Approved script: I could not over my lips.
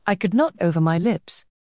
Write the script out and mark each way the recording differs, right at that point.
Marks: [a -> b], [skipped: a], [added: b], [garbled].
I could not over my lips.